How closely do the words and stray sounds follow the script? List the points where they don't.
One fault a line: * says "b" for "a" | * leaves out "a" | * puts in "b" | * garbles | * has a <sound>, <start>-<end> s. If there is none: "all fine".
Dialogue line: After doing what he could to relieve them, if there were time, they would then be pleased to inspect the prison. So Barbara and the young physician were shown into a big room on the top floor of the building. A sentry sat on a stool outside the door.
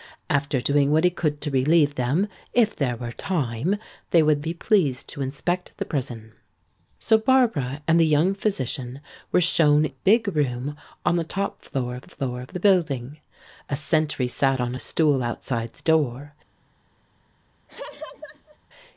* leaves out "then"
* leaves out "into"
* puts in "floor of"
* has a laugh, 17.7-18.6 s